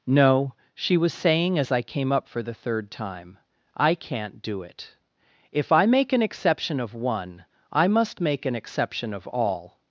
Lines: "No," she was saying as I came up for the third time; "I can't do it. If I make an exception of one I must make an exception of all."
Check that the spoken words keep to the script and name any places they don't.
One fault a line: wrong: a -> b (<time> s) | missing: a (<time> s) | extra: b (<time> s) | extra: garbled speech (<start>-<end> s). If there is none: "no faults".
no faults